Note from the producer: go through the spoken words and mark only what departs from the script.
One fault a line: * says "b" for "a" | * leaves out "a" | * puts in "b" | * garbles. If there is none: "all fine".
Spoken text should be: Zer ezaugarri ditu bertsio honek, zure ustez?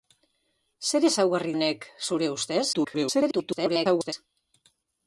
* leaves out "ditu bertsio"
* garbles